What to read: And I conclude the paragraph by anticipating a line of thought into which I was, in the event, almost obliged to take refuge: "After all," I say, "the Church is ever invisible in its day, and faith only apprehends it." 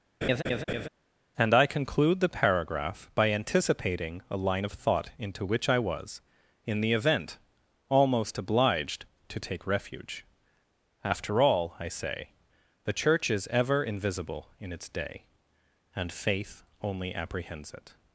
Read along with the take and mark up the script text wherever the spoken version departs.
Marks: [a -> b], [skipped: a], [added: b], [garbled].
And I conclude the paragraph by anticipating a line of thought into which I was, in the event, almost obliged to take refuge: "After all," I say, "the Church is ever invisible in its day, and faith only apprehends it."